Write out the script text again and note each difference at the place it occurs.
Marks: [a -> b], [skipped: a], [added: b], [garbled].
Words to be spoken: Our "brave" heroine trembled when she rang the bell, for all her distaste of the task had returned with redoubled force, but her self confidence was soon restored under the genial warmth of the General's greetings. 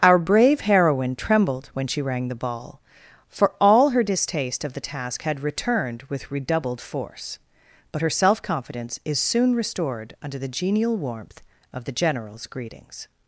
Our "brave" heroine trembled when she rang the [bell, -> ball] for all her distaste of the task had returned with redoubled force, but her self confidence [was -> is] soon restored under the genial warmth of the General's greetings.